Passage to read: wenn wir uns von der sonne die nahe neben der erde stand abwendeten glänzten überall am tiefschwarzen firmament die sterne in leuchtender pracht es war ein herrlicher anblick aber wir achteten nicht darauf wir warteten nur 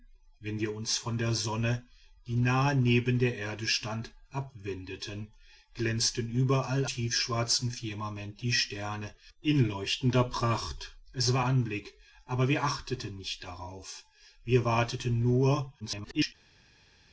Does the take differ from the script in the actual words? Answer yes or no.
yes